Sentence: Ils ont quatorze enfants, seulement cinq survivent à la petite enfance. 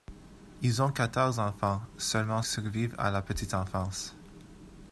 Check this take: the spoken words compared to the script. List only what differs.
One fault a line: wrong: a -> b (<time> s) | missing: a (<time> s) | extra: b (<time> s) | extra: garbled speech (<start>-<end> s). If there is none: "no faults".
missing: cinq (2.4 s)